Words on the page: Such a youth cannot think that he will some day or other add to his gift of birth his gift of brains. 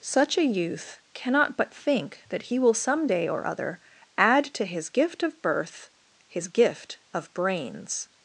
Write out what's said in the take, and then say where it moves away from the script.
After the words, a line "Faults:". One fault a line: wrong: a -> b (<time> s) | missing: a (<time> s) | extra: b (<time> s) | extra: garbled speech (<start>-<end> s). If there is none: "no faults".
Such a youth cannot but think that he will some day or other add to his gift of birth his gift of brains.
Faults:
extra: but (1.6 s)